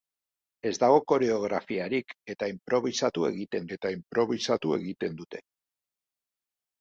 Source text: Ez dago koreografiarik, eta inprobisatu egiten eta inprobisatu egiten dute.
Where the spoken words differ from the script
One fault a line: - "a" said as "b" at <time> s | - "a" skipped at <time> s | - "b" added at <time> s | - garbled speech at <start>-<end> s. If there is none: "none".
none